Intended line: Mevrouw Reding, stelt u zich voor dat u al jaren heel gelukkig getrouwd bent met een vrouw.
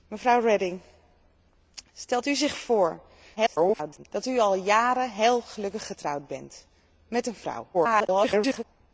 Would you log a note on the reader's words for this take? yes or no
yes